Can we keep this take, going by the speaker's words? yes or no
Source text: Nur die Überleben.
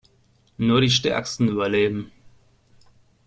no